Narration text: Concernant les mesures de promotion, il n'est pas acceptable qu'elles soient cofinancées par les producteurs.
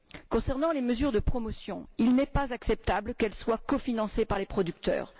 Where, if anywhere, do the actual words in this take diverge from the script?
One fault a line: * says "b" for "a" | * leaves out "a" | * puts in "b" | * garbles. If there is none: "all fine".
all fine